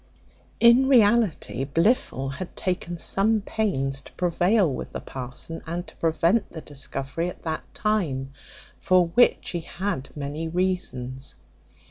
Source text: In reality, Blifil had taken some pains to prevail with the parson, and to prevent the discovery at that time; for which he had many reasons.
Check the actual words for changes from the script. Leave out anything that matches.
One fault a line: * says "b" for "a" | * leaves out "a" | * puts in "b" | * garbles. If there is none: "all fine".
all fine